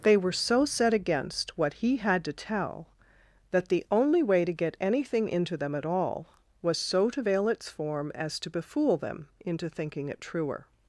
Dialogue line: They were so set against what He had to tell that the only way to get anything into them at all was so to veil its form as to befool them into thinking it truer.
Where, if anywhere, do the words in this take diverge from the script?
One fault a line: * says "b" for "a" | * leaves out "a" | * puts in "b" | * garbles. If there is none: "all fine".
all fine